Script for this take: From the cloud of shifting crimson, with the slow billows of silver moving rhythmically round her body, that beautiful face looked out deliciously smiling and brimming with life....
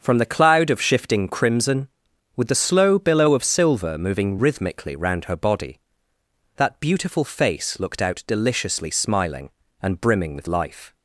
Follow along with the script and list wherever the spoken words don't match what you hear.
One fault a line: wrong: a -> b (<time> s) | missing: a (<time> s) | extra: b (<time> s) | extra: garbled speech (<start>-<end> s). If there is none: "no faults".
wrong: billows -> billow (3.0 s)